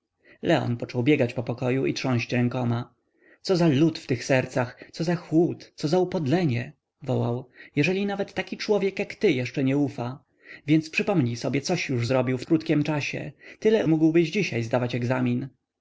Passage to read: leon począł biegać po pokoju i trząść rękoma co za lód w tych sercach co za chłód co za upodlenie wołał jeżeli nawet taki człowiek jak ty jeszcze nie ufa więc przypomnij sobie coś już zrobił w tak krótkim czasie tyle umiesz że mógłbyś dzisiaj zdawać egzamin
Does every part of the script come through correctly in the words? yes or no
no